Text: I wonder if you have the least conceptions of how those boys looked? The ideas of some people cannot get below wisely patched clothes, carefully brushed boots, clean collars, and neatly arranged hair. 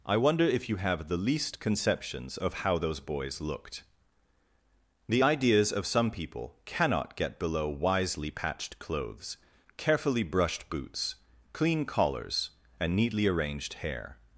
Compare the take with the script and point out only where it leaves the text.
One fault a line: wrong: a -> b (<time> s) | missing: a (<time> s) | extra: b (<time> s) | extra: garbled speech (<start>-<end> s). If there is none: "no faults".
no faults